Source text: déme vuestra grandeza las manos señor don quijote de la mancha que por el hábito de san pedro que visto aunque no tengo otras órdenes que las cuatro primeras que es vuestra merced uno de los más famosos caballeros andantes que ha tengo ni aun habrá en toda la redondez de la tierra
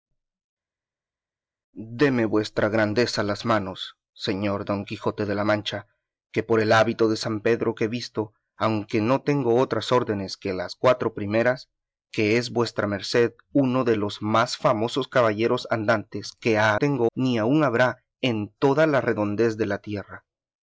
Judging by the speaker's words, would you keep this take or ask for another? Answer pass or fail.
pass